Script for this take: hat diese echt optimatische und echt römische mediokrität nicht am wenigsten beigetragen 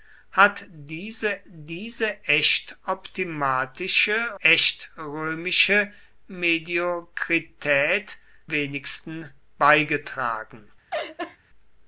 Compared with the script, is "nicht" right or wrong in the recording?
wrong